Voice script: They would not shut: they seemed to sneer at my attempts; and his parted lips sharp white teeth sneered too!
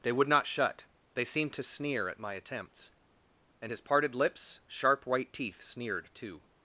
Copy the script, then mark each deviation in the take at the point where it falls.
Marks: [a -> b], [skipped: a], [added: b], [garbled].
They would not shut: they seemed to sneer at my attempts; and his parted lips sharp white teeth sneered too!